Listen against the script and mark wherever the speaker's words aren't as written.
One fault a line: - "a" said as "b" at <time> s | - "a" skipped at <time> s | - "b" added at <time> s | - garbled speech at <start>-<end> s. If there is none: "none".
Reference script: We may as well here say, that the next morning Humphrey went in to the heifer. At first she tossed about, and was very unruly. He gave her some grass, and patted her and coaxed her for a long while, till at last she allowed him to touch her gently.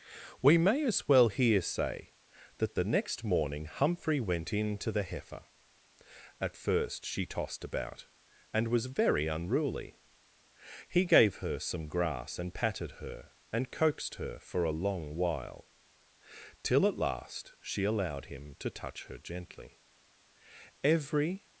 - "Every" added at 20.8 s